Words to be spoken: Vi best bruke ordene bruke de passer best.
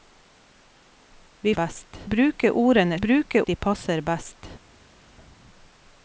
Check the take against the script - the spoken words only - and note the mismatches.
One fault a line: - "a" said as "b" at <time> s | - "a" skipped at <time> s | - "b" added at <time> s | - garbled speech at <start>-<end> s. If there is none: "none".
none